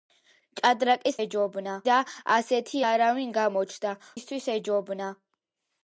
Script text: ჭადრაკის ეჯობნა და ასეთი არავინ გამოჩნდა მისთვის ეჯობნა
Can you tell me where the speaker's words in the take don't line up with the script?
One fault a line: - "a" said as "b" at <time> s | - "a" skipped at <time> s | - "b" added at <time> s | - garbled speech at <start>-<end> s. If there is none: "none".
none